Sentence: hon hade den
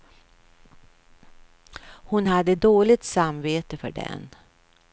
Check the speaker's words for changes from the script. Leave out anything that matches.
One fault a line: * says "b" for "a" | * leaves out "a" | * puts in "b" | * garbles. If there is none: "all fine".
* puts in "dåligt samvete för"